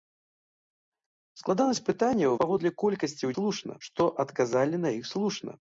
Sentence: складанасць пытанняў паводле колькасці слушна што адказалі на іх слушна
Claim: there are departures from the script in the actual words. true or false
false